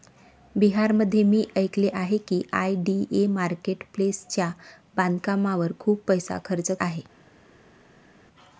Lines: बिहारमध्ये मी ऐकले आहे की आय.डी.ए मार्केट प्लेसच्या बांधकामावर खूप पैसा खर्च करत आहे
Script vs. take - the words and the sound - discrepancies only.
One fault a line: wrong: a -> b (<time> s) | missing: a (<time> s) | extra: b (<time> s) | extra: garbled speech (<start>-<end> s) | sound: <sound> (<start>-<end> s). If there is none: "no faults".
missing: करत (6.7 s)